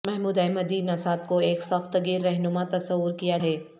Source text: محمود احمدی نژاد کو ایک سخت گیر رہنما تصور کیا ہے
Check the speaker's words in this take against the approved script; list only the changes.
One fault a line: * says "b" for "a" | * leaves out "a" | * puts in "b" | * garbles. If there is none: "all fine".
all fine